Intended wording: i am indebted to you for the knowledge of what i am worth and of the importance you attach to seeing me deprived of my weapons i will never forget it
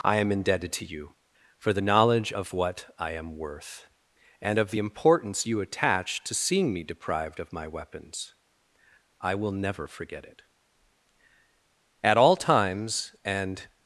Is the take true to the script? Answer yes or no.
no